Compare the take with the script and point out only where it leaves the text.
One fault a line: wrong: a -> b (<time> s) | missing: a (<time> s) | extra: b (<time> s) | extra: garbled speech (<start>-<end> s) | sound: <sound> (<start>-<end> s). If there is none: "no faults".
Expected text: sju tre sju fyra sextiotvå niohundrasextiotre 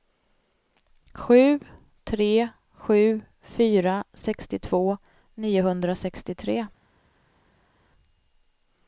no faults